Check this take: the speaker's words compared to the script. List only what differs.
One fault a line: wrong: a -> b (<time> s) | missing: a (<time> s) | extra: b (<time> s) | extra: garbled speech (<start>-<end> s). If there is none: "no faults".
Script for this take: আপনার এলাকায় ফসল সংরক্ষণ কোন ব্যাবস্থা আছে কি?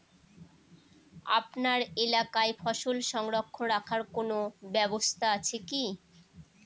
extra: রাখার (3.7 s)